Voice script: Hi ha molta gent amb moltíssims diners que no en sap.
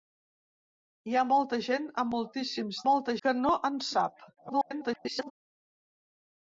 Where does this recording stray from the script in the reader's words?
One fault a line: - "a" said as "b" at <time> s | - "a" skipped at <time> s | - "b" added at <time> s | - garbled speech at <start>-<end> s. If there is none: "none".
- "diners" said as "molta" at 2.9 s
- garbled speech at 4.4-5.3 s